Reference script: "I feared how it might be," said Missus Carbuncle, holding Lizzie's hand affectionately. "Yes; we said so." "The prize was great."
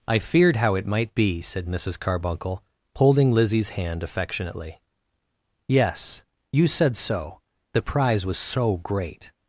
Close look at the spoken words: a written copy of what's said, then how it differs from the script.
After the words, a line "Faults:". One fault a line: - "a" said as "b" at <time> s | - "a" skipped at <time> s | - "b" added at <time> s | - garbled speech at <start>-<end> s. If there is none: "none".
"I feared how it might be," said Missus Carbuncle, holding Lizzie's hand affectionately. "Yes; you said so." "The prize was so great."
Faults:
- "we" said as "you" at 6.5 s
- "so" added at 8.4 s